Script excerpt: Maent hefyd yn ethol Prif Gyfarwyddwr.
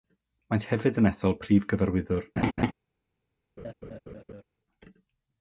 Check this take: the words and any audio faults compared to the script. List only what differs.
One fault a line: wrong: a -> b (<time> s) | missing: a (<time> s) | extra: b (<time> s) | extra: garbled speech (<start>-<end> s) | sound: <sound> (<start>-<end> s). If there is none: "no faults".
sound: laugh (2.4-2.7 s)
sound: laugh (3.6-4.4 s)